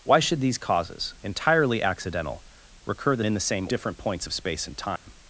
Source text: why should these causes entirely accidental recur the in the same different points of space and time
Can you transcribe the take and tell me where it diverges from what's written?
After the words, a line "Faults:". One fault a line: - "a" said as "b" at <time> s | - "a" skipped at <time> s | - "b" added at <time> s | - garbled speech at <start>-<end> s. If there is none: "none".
why should these causes entirely accidental recur the in the same different points of space and time
Faults:
none